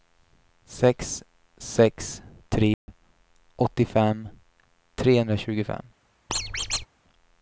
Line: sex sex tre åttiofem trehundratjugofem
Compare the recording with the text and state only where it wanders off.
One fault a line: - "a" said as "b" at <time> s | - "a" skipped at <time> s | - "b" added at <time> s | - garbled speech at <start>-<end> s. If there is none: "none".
none